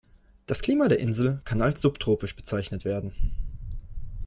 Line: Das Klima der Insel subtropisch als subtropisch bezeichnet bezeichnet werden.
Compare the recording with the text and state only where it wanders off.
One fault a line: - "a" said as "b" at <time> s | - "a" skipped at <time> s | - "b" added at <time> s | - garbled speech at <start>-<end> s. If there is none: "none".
- "subtropisch" said as "kann" at 1.5 s
- "bezeichnet" skipped at 2.8 s